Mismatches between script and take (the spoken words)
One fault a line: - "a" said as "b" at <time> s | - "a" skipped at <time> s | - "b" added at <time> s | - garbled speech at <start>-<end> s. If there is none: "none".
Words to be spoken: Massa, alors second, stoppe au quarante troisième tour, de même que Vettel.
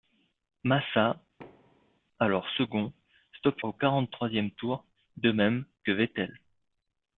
none